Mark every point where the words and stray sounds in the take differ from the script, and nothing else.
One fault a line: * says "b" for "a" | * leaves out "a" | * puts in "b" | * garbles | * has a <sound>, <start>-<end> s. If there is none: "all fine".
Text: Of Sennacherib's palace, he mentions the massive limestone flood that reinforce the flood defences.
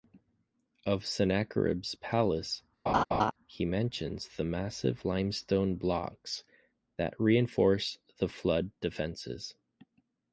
* has a laugh, 2.9-3.3 s
* says "blocks" for "flood"